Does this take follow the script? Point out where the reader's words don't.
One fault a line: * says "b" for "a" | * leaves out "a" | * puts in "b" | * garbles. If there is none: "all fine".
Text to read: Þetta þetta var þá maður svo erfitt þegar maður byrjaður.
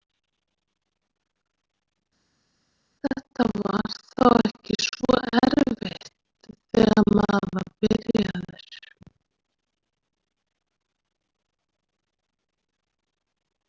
* leaves out "þetta"
* says "ekki" for "maður"
* puts in "var"